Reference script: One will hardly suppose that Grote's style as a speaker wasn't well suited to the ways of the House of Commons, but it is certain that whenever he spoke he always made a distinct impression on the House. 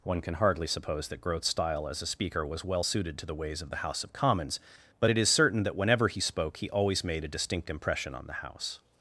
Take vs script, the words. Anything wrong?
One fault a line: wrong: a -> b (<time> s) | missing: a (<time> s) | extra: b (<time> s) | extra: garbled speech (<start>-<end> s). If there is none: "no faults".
wrong: will -> can (0.2 s)
wrong: wasn't -> was (2.5 s)